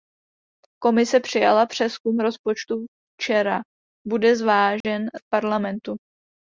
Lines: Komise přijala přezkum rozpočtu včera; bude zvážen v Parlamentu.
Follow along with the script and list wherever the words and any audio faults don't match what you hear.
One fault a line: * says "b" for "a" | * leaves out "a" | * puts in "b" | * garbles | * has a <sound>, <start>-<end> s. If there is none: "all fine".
* has a dropout, 4.8-4.8 s